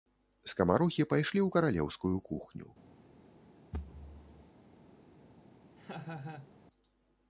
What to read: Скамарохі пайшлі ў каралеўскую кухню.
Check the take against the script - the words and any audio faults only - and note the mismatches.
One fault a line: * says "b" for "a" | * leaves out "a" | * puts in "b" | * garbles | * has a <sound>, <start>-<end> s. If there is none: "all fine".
* has a thud, 3.7-4.5 s
* has a laugh, 5.8-6.5 s